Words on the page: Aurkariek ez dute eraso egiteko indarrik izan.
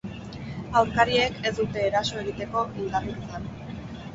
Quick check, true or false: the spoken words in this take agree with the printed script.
true